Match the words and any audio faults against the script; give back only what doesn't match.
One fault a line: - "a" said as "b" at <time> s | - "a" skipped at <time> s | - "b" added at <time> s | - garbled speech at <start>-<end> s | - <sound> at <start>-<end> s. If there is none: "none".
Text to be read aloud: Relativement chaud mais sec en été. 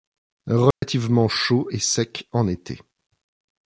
- dropout at 0.7-0.8 s
- "mais" said as "et" at 1.7 s